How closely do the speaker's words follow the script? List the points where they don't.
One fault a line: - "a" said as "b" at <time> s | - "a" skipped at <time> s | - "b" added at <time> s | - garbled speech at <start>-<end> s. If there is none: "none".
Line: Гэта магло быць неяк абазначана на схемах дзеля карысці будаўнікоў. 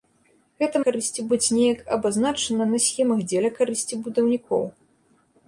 - "магло" said as "карысці" at 0.9 s